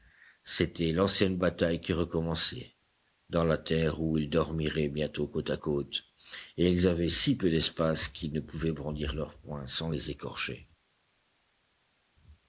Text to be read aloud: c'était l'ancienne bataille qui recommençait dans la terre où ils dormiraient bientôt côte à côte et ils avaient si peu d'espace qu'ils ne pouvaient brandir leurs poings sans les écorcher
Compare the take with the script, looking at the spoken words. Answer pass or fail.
pass